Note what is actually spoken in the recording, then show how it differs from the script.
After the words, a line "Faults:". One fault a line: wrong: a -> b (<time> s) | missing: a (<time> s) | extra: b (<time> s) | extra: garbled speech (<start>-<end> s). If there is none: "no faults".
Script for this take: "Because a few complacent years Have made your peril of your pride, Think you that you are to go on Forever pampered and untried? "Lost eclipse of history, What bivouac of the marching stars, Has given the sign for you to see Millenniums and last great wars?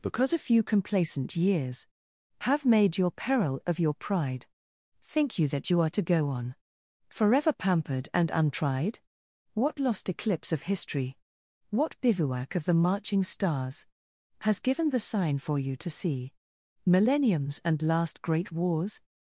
"Because a few complacent years Have made your peril of your pride, Think you that you are to go on Forever pampered and untried? "What lost eclipse of history, What bivouac of the marching stars, Has given the sign for you to see Millenniums and last great wars?
Faults:
extra: What (9.5 s)